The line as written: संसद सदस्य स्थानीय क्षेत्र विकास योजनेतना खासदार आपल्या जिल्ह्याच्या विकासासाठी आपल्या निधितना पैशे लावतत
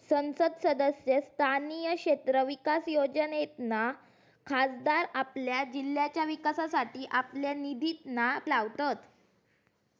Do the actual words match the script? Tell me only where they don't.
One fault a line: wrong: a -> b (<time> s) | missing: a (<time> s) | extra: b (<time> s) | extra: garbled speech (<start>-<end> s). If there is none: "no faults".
missing: पैशे (8.4 s)